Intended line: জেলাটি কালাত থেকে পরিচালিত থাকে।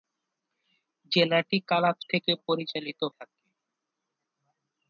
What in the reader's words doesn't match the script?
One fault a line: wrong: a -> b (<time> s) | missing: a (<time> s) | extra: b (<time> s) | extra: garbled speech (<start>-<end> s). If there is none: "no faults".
no faults